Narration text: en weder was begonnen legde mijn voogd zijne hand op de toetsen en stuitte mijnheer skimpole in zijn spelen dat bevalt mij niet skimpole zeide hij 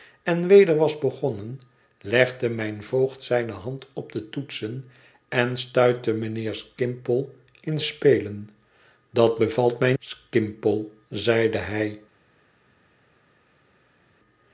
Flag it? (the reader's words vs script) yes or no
yes